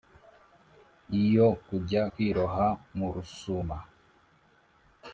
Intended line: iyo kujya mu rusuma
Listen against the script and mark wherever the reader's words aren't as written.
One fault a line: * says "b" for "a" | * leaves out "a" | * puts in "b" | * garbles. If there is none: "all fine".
* puts in "kwiroha"